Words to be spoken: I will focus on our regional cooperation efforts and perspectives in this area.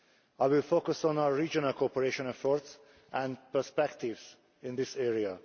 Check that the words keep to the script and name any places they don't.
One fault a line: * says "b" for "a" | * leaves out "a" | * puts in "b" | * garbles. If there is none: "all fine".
all fine